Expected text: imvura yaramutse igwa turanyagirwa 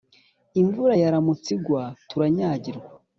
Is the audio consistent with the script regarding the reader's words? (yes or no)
yes